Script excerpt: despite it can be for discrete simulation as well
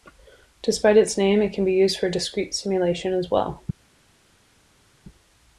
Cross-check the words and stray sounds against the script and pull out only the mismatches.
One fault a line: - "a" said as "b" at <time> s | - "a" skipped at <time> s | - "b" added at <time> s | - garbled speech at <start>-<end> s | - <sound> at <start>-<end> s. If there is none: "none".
- "its name" added at 1.0 s
- "used" added at 1.7 s